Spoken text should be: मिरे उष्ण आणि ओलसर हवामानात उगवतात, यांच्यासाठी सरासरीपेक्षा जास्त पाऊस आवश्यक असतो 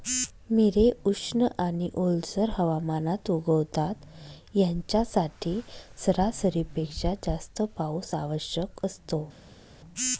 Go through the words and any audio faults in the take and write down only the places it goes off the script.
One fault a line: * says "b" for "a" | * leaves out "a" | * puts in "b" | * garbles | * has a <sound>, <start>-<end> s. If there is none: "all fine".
all fine